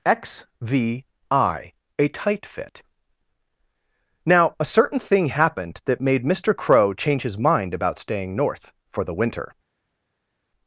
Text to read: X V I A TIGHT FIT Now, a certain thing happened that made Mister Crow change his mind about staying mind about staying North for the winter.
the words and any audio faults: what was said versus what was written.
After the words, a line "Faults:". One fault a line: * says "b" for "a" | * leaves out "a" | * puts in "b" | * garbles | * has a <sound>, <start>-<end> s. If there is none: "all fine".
X V I A TIGHT FIT Now, a certain thing happened that made Mister Crow change his mind about staying North for the winter.
Faults:
* leaves out "mind about staying"